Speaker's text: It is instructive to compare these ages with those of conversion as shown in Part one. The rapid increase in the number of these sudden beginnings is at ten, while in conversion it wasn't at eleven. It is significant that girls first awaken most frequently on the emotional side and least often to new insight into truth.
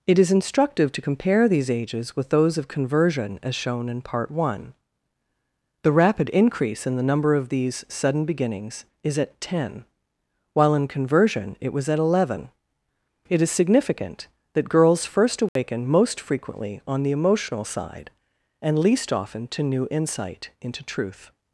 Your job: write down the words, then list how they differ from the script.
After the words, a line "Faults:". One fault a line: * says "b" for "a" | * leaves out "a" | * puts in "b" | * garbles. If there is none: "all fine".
It is instructive to compare these ages with those of conversion as shown in Part one. The rapid increase in the number of these sudden beginnings is at ten, while in conversion it was at eleven. It is significant that girls first awaken most frequently on the emotional side and least often to new insight into truth.
Faults:
* says "was" for "wasn't"